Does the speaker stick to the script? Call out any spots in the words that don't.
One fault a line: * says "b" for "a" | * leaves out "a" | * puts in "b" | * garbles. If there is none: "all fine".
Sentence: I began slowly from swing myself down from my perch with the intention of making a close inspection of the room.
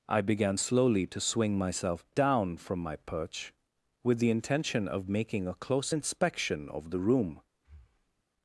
* says "to" for "from"